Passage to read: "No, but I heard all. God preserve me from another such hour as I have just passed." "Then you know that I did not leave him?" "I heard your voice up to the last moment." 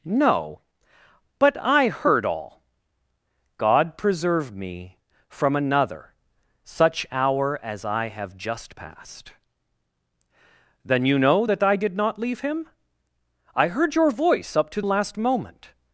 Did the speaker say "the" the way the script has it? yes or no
no